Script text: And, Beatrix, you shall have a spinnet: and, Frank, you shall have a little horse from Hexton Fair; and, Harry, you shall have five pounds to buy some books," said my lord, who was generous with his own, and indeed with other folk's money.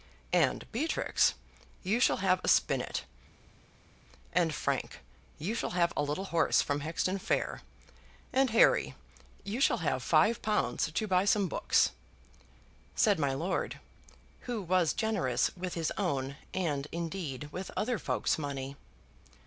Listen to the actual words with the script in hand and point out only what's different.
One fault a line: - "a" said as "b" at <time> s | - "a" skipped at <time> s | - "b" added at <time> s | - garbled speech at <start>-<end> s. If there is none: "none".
none